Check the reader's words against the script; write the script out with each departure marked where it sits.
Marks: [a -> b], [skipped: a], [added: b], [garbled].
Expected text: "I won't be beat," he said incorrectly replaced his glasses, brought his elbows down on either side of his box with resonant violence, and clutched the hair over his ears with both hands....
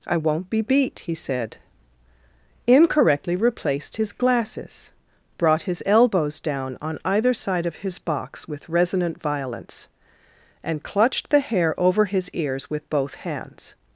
"I won't be beat," he said incorrectly replaced his glasses, brought his elbows down on either side of his box with resonant violence, and clutched the hair over his ears with both hands....